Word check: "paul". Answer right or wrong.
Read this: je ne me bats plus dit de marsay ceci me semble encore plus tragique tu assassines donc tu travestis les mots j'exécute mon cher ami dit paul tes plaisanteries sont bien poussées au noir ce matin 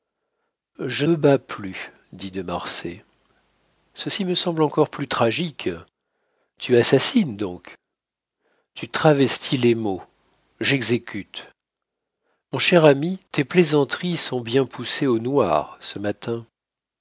wrong